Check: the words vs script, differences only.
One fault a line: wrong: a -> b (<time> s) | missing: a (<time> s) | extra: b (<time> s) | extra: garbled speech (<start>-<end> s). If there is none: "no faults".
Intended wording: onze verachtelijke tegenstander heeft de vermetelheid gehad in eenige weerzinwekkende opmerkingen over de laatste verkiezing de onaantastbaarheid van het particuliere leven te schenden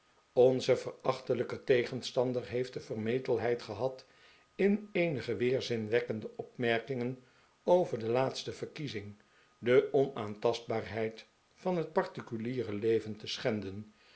no faults